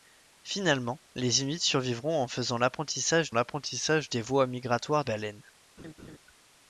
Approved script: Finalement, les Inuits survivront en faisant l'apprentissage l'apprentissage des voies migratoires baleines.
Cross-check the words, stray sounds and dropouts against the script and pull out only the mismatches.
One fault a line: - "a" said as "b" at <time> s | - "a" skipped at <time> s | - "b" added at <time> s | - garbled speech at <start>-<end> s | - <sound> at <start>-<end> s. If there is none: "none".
- laugh at 5.8-6.2 s